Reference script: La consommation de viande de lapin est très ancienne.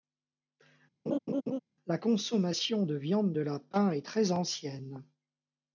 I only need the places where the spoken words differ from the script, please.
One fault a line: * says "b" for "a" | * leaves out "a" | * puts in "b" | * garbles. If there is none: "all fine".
all fine